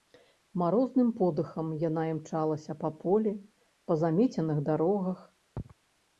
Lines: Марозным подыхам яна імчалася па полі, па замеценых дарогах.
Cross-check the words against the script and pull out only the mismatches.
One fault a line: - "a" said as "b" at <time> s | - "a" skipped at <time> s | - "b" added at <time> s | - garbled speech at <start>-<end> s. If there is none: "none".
none